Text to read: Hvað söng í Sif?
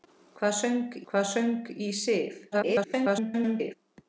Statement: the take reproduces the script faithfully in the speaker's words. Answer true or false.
false